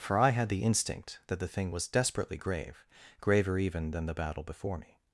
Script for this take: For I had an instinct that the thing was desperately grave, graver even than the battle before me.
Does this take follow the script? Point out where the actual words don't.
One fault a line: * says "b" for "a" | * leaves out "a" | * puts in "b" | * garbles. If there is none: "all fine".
* says "the" for "an"